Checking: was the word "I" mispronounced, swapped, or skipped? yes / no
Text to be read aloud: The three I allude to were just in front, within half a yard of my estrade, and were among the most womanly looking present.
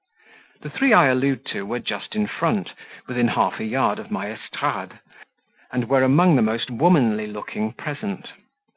no